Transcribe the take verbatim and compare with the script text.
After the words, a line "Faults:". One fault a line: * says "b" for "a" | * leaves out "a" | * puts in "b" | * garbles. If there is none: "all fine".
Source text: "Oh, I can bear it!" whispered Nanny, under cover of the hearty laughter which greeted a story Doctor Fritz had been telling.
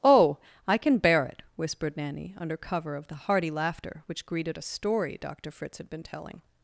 "Oh, I can bear it!" whispered Nanny, under cover of the hearty laughter which greeted a story Doctor Fritz had been telling.
Faults:
all fine